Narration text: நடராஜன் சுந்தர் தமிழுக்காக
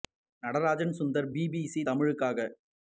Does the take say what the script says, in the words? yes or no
no